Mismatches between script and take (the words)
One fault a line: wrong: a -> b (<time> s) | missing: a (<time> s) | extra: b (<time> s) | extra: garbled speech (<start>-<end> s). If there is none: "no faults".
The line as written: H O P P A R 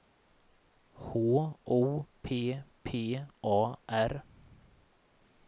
no faults